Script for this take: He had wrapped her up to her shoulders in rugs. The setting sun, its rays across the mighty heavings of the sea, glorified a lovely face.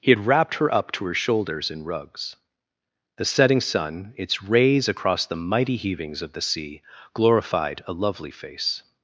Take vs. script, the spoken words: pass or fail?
pass